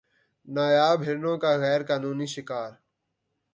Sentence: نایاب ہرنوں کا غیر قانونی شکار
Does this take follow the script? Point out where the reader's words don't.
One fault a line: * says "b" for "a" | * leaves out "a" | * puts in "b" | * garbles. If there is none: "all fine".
all fine